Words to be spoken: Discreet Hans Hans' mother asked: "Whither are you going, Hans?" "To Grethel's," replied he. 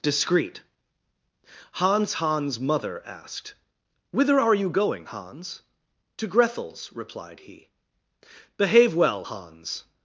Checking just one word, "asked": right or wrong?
right